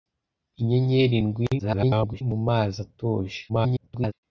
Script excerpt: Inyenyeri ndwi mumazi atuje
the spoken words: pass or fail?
fail